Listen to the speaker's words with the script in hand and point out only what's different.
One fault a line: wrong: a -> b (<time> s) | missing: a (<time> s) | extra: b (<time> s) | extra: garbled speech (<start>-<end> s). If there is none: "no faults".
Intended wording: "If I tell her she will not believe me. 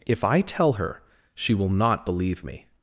no faults